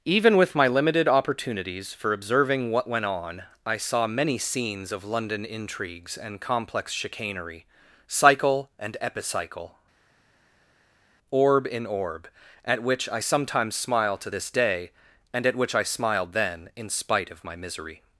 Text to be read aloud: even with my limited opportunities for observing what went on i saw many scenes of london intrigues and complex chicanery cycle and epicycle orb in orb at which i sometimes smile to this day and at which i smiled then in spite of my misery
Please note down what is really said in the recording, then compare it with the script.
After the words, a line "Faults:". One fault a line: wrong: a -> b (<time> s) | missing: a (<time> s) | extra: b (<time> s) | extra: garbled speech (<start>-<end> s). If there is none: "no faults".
even with my limited opportunities for observing what went on i saw many scenes of london intrigues and complex chicanery cycle and epicycle orb in orb at which i sometimes smile to this day and at which i smiled then in spite of my misery
Faults:
no faults